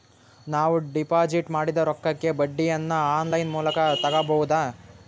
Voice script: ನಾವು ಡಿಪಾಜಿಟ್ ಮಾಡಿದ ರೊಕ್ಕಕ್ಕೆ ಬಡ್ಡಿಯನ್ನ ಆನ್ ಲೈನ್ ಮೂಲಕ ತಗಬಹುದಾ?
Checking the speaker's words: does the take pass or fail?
pass